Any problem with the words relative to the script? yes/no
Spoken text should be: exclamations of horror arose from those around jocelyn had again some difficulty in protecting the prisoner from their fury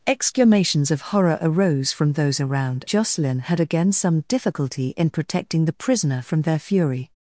no